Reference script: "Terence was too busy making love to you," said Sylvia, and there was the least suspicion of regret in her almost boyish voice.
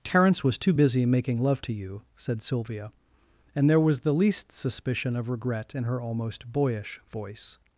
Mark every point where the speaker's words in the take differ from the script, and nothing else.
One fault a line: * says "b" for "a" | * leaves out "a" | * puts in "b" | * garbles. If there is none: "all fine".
all fine